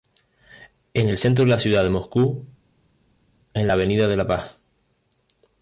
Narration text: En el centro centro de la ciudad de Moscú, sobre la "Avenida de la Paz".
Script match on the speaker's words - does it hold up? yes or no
no